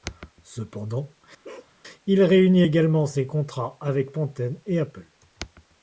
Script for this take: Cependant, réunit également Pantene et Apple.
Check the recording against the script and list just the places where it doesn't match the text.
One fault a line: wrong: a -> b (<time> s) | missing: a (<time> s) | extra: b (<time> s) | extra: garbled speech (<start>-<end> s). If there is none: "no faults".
extra: il (2.1 s)
extra: ses contrats avec (3.0 s)